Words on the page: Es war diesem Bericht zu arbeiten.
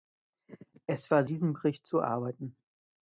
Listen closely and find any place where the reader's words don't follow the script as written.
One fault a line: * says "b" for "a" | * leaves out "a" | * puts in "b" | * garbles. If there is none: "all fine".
all fine